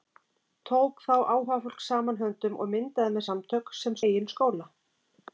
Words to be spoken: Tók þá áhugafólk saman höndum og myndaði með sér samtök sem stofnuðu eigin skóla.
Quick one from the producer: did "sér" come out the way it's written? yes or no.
no